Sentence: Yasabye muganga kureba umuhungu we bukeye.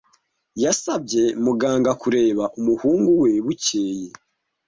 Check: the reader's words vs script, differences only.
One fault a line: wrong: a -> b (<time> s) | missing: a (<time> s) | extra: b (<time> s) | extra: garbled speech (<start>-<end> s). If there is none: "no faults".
no faults